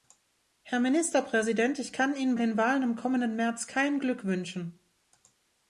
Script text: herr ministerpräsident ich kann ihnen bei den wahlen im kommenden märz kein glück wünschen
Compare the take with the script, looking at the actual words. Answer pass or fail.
fail